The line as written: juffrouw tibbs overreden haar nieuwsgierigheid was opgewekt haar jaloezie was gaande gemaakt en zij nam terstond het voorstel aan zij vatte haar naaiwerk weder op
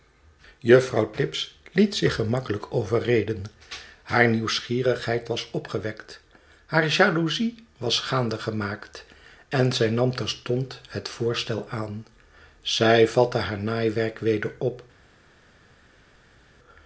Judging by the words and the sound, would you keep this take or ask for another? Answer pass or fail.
fail